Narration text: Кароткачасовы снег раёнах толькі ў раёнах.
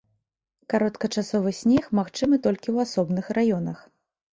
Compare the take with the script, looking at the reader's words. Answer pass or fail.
fail